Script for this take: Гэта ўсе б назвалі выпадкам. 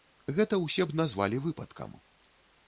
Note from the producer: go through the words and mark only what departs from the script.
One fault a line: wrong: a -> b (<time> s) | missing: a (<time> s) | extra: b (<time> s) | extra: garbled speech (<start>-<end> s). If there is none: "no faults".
no faults